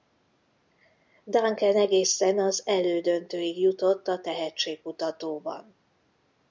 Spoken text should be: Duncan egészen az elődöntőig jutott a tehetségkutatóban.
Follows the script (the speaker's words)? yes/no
yes